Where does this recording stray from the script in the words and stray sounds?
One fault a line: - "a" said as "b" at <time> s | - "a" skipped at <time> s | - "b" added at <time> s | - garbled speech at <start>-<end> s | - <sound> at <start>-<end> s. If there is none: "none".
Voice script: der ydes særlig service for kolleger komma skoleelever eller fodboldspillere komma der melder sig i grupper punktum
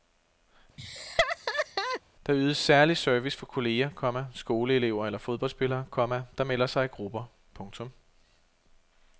- laugh at 0.8-2.0 s